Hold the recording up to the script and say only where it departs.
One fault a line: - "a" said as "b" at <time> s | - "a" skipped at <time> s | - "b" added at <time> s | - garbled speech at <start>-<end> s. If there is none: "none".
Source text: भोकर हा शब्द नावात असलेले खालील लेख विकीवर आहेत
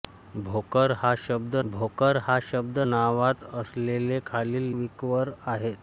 - "भोकर हा शब्द" added at 1.6 s
- "लेख" skipped at 4.7 s